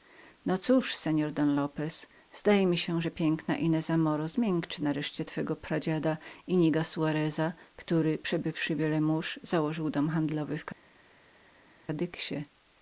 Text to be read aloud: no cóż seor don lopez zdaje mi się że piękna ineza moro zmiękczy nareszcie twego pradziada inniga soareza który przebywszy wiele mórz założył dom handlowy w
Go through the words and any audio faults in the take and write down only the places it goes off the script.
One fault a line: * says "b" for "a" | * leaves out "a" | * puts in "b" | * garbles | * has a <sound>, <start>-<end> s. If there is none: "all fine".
all fine